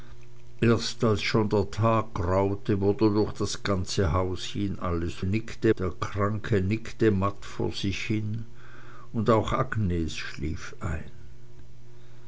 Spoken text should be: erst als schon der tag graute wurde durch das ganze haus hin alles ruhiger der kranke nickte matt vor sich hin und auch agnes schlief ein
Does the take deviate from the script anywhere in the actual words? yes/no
yes